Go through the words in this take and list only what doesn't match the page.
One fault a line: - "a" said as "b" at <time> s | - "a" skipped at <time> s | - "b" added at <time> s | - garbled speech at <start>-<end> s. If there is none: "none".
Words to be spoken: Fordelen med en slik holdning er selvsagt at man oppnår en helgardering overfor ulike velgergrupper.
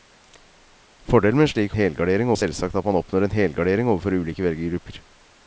- "holdning" said as "helgardering" at 1.8 s